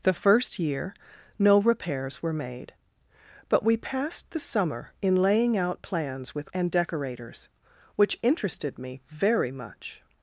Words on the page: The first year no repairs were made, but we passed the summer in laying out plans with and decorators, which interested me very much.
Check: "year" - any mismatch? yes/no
no